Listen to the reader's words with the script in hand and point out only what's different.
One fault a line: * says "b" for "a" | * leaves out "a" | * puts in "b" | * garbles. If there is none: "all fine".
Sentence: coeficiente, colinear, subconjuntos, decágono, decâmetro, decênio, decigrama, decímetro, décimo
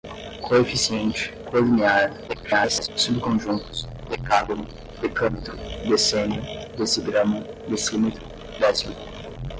* garbles